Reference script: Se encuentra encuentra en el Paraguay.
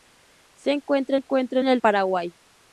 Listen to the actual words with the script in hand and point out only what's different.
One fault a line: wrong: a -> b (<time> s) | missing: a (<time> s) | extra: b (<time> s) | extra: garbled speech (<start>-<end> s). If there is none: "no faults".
no faults